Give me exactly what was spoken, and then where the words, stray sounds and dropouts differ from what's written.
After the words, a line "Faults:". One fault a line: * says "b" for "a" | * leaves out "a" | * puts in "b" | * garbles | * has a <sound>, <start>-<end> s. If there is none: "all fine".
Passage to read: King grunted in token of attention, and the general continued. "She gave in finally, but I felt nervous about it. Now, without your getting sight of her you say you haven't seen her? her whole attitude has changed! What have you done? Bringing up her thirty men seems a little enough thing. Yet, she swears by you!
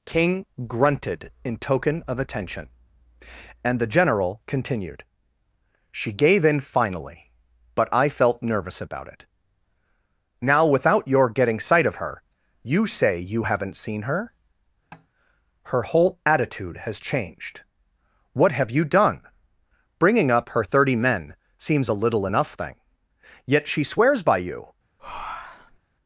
King grunted in token of attention, and the general continued. "She gave in finally, but I felt nervous about it. Now, without your getting sight of her you say you haven't seen her? her whole attitude has changed! What have you done? Bringing up her thirty men seems a little enough thing. Yet, she swears by you!
Faults:
* has a tap, 14.9-15.1 s
* has a breath, 25.0-25.8 s